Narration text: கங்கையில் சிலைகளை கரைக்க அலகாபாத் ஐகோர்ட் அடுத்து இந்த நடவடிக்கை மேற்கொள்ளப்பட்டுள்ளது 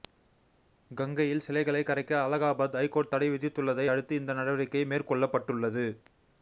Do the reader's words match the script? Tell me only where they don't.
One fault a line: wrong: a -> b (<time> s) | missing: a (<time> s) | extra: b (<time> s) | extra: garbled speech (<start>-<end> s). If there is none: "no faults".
extra: தடை விதித்துள்ளதை (3.1 s)